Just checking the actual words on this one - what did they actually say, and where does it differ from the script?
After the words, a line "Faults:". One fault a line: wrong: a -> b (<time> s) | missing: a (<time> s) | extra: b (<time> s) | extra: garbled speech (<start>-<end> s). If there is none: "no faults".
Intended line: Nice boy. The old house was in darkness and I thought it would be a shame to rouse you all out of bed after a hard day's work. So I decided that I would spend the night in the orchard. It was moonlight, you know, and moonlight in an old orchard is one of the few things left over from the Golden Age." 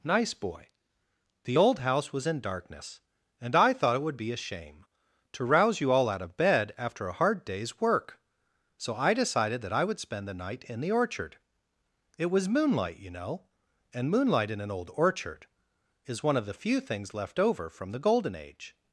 Nice boy. The old house was in darkness and I thought it would be a shame to rouse you all out of bed after a hard day's work. So I decided that I would spend the night in the orchard. It was moonlight, you know, and moonlight in an old orchard is one of the few things left over from the Golden Age."
Faults:
no faults